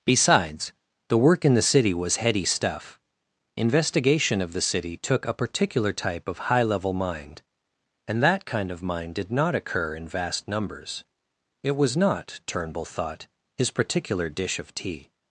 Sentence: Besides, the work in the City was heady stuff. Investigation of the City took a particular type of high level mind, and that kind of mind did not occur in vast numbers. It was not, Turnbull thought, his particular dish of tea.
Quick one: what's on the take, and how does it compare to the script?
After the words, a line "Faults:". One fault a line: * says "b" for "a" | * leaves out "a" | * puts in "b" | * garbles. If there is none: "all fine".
Besides, the work in the City was heady stuff. Investigation of the City took a particular type of high level mind, and that kind of mind did not occur in vast numbers. It was not, Turnbull thought, his particular dish of tea.
Faults:
all fine